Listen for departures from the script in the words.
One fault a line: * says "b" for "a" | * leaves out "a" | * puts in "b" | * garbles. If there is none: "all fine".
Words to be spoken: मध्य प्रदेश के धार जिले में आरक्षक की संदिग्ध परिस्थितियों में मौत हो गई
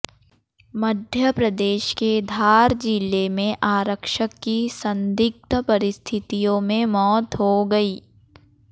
all fine